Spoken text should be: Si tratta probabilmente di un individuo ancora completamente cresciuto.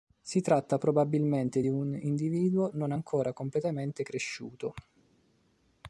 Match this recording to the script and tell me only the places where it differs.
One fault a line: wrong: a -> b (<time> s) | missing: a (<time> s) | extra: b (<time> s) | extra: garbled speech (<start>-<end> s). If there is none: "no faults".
extra: non (2.7 s)